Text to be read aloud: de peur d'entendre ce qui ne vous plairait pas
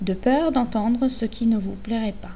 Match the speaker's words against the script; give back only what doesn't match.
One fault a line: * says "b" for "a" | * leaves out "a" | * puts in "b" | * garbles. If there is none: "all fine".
all fine